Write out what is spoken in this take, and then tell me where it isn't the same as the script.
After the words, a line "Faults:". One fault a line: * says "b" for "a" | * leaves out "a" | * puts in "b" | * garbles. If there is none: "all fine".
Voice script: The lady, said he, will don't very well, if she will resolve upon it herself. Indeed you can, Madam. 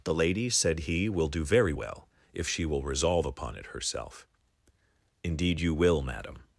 The lady, said he, will do very well, if she will resolve upon it herself. Indeed you will, Madam.
Faults:
* says "do" for "don't"
* says "will" for "can"